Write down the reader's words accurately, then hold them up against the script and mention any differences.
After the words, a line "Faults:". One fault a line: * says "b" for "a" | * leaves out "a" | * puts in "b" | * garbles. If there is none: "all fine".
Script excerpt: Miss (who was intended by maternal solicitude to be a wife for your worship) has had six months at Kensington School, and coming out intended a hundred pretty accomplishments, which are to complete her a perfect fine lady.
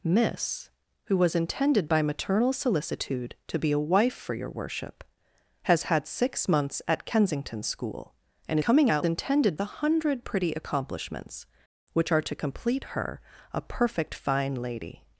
Miss (who was intended by maternal solicitude to be a wife for your worship) has had six months at Kensington School, and coming out intended a hundred pretty accomplishments, which are to complete her a perfect fine lady.
Faults:
all fine